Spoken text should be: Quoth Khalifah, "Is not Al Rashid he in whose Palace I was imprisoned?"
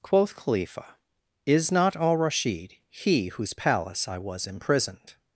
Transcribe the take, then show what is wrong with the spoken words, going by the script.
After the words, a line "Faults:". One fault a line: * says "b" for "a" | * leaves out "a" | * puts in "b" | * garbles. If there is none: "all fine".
Quoth Khalifah, "Is not Al Rashid he whose Palace I was imprisoned?"
Faults:
* leaves out "in"